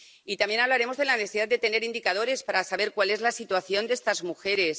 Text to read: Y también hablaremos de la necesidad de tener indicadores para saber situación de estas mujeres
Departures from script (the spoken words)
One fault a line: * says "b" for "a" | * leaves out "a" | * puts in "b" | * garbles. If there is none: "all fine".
* puts in "cuál es la"